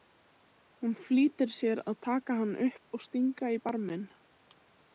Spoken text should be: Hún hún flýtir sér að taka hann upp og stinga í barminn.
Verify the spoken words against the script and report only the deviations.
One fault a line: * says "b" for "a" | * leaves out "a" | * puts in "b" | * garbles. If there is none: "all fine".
* leaves out "hún"